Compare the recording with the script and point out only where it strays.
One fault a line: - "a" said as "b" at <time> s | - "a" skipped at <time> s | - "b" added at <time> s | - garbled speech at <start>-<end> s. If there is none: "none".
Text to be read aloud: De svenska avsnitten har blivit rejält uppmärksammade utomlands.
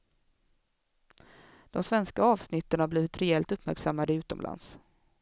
none